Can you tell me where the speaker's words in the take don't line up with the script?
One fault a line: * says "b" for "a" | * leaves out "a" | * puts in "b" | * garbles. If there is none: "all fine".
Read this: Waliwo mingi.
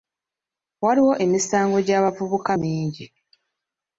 * puts in "emisango gy'abavubuka"